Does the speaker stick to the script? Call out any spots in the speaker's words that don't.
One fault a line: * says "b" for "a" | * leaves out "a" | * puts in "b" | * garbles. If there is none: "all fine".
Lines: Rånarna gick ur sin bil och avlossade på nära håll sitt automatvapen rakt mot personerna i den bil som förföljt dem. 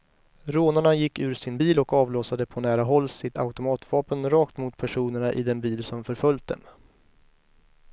all fine